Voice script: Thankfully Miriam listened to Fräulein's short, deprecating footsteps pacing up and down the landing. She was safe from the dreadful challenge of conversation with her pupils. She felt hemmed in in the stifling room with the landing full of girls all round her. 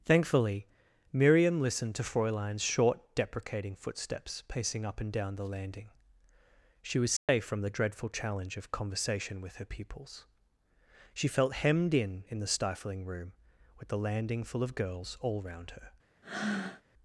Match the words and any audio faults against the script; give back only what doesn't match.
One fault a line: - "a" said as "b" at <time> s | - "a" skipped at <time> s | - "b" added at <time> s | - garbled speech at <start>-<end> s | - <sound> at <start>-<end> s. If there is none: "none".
- dropout at 7.2-7.3 s
- breath at 16.2-16.8 s